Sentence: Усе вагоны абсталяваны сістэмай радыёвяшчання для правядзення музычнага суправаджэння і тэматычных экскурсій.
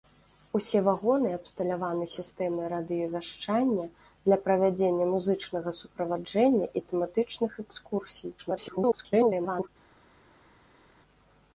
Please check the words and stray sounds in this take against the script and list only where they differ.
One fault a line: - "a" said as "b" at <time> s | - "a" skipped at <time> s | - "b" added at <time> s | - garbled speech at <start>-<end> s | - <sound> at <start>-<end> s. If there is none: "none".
- garbled speech at 8.4-9.7 s